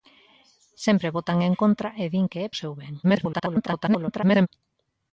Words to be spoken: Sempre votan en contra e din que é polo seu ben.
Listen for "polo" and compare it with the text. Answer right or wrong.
wrong